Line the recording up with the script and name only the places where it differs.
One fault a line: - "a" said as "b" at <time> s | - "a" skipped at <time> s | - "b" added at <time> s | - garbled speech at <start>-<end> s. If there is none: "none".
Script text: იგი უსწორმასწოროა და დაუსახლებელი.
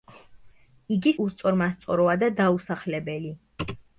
none